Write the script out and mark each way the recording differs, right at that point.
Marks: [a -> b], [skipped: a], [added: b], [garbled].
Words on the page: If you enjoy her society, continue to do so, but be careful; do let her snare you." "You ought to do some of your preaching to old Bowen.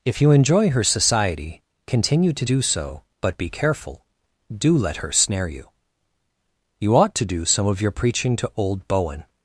If you enjoy her society, continue to do so, but be careful; do let her snare you." "You ought to do some of your preaching to old Bowen.